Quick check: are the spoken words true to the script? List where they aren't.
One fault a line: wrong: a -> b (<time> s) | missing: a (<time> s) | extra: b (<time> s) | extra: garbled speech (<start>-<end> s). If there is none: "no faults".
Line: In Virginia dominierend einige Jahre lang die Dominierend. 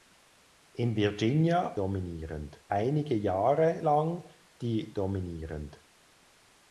no faults